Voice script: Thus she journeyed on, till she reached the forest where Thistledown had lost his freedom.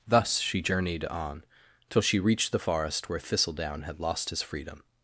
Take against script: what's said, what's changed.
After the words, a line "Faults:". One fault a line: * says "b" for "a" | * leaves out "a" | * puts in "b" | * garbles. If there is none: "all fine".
Thus she journeyed on, till she reached the forest where Thistledown had lost his freedom.
Faults:
all fine